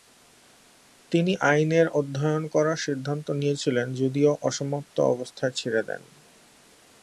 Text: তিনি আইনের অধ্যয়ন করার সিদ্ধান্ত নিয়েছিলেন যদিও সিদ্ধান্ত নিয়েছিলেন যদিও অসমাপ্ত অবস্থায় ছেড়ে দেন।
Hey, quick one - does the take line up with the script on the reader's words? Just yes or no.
no